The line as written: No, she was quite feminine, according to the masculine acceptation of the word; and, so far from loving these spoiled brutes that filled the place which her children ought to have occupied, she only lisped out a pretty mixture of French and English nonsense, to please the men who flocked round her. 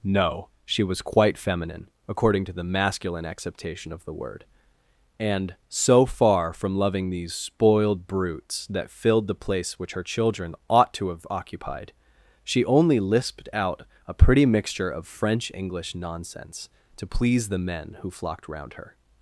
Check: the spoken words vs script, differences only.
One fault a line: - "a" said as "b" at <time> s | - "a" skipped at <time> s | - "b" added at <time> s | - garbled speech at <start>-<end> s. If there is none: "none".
- "and" skipped at 15.5 s